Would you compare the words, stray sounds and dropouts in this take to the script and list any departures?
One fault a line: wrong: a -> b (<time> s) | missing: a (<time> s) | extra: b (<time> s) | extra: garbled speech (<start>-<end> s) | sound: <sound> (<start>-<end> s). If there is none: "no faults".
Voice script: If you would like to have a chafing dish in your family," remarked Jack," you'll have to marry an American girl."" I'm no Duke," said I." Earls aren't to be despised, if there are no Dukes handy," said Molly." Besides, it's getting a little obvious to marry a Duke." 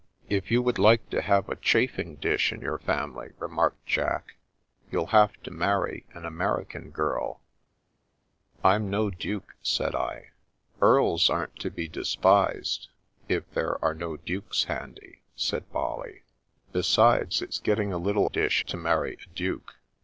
wrong: obvious -> dish (18.3 s)